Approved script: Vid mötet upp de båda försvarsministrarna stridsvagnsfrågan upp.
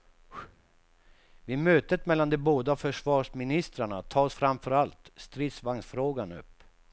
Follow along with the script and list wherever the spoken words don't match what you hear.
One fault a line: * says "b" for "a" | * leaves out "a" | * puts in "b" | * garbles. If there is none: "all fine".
* says "mellan" for "upp"
* puts in "tas framför allt"